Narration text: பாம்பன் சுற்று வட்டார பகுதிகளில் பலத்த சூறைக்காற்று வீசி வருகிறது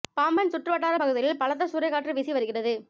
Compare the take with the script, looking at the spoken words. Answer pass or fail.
pass